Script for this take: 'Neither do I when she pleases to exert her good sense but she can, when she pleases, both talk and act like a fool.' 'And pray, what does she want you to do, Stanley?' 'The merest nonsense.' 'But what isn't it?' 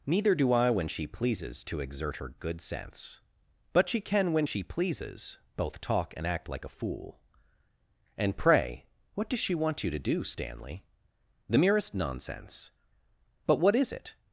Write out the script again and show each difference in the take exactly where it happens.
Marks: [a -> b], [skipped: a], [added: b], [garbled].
'Neither do I when she pleases to exert her good sense but she can, when she pleases, both talk and act like a fool.' 'And pray, what does she want you to do, Stanley?' 'The merest nonsense.' 'But what [isn't -> is] it?'